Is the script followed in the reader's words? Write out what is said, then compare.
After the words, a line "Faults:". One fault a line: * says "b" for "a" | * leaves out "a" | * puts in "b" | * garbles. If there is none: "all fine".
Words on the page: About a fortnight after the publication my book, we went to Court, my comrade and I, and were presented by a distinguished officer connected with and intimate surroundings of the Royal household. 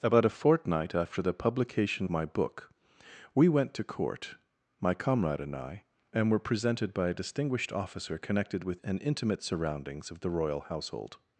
About a fortnight after the publication my book, we went to Court, my comrade and I, and were presented by a distinguished officer connected with and intimate surroundings of the Royal household.
Faults:
all fine